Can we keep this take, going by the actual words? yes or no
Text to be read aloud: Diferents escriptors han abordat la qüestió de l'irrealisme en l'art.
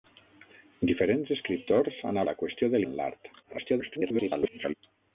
no